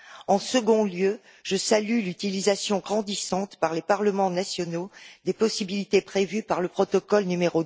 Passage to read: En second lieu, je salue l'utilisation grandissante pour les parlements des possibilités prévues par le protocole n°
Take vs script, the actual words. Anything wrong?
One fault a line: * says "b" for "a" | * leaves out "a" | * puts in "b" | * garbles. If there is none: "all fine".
* says "par" for "pour"
* puts in "nationaux"